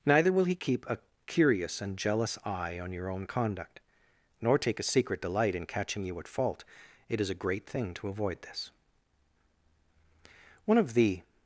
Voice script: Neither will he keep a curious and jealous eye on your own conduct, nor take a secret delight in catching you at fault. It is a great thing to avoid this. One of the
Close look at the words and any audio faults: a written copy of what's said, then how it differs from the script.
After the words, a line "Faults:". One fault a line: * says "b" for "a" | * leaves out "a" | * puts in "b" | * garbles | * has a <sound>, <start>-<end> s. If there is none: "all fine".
Neither will he keep a curious and jealous eye on your own conduct, nor take a secret delight in catching you at fault. It is a great thing to avoid this. One of the
Faults:
all fine